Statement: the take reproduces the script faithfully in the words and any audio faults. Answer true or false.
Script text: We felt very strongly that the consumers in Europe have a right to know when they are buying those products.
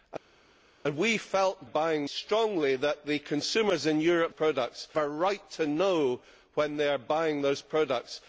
false